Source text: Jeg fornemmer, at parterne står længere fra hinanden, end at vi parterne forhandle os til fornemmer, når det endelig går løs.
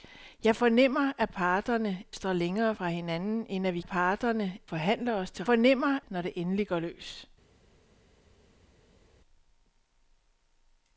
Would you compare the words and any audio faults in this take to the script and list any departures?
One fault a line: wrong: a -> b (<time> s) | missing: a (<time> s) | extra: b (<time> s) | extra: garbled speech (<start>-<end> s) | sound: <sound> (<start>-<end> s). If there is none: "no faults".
no faults